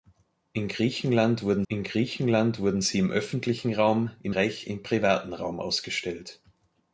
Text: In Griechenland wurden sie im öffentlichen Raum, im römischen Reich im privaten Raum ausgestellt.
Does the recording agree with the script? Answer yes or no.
no